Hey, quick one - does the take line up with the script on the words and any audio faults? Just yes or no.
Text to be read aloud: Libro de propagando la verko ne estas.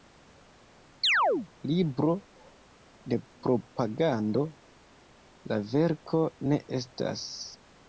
no